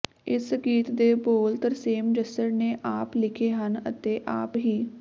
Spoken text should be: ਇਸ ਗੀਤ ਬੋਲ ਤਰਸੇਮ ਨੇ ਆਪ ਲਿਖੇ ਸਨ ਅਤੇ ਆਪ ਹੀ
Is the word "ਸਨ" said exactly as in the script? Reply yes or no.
no